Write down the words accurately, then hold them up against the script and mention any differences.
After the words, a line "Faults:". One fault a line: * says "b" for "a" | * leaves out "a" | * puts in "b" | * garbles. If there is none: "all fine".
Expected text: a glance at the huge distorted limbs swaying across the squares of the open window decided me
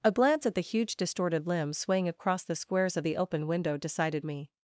a glance at the huge distorted limbs swaying across the squares of the open window decided me
Faults:
all fine